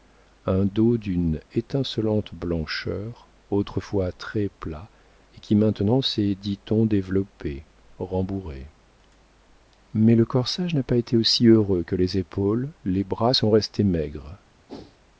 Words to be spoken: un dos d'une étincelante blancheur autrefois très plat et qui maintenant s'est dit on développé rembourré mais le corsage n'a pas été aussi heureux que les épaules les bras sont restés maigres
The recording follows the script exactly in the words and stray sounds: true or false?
false